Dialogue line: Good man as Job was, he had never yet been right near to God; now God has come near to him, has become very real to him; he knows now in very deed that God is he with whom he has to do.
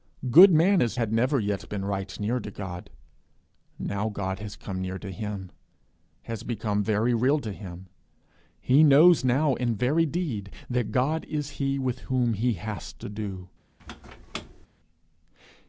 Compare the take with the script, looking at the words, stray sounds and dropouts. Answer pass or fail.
fail